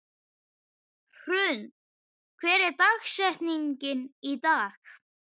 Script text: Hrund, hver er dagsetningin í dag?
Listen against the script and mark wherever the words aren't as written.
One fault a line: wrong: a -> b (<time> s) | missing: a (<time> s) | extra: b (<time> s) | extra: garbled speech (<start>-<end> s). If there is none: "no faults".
no faults